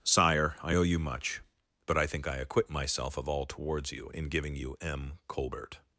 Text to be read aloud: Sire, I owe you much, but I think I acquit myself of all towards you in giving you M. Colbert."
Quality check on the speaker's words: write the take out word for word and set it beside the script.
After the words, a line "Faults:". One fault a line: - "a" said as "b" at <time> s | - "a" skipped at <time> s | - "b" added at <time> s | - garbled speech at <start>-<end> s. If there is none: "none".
Sire, I owe you much, but I think I acquit myself of all towards you in giving you M. Colbert."
Faults:
none